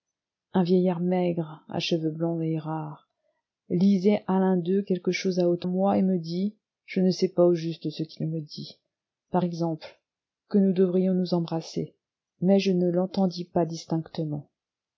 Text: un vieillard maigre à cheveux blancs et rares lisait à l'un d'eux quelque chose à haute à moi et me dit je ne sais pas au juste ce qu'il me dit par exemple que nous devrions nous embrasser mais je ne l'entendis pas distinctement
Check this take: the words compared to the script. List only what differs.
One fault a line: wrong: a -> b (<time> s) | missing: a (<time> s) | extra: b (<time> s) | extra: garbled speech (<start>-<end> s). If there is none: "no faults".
no faults